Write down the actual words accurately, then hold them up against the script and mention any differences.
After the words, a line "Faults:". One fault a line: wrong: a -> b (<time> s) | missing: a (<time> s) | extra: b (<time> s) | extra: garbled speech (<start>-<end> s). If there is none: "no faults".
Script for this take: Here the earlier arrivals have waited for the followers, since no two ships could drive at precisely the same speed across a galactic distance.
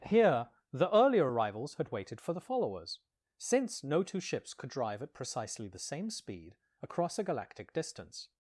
Here the earlier arrivals had waited for the followers, since no two ships could drive at precisely the same speed across a galactic distance.
Faults:
wrong: have -> had (1.7 s)